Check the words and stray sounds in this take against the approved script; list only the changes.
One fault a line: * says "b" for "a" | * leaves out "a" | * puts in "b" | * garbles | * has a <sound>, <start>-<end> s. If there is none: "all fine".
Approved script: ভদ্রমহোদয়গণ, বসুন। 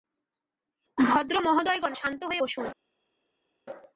* puts in "শান্ত হয়ে"